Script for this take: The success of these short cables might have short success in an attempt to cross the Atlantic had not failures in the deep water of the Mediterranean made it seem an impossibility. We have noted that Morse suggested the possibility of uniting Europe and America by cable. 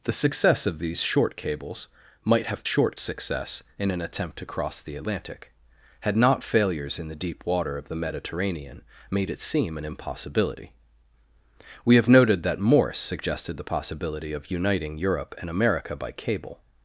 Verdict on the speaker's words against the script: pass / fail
pass